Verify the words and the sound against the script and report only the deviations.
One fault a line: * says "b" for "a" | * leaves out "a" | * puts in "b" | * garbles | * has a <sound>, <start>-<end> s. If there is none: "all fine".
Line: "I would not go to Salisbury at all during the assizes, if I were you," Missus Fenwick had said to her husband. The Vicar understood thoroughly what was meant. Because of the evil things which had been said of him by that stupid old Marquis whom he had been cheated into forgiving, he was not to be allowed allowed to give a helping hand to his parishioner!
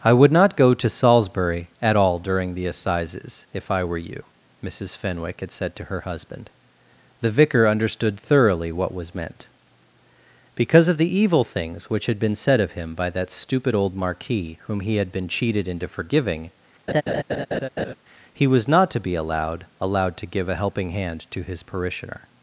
* has a laugh, 16.9-17.9 s